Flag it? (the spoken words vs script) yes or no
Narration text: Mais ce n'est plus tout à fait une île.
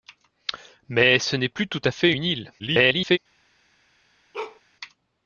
yes